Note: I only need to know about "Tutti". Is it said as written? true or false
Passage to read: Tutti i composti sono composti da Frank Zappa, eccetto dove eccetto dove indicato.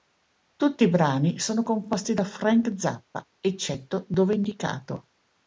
true